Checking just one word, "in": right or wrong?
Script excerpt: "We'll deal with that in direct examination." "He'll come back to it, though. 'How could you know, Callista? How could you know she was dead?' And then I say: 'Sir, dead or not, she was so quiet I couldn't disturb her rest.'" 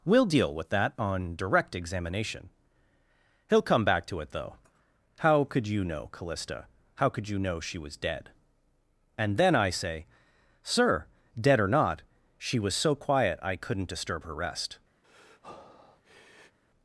wrong